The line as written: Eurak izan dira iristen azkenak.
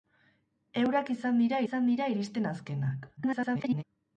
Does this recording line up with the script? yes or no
no